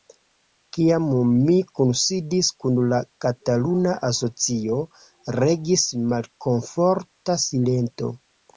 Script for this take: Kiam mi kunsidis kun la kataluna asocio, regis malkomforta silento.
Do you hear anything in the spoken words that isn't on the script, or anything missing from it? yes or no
no